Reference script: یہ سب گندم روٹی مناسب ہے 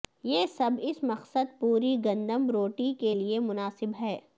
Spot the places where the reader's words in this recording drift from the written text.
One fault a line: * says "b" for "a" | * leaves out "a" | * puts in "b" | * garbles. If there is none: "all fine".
* puts in "اس مقصد پوری"
* puts in "کے لئے"